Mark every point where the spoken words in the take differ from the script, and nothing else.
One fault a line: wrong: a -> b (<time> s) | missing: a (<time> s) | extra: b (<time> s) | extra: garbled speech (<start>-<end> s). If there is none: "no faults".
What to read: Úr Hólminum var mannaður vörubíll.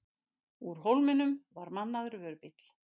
no faults